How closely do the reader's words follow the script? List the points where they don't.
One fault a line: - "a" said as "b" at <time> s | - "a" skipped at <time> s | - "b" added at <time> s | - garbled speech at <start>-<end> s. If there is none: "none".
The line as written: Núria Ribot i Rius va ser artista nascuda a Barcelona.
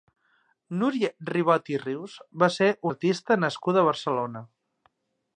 none